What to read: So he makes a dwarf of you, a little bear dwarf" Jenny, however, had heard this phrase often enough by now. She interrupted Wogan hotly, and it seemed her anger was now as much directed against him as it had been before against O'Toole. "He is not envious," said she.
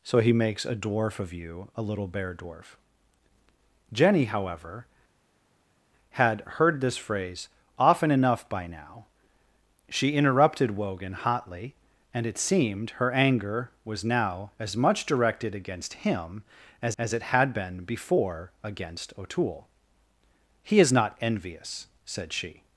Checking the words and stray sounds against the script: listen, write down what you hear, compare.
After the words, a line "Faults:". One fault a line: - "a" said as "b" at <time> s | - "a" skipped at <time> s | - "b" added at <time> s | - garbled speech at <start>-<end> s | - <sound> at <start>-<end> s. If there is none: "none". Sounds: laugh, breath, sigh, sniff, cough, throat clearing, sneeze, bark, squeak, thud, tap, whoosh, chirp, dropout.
So he makes a dwarf of you, a little bear dwarf" Jenny, however, had heard this phrase often enough by now. She interrupted Wogan hotly, and it seemed her anger was now as much directed against him as as it had been before against O'Toole. "He is not envious," said she.
Faults:
- "as" added at 17.0 s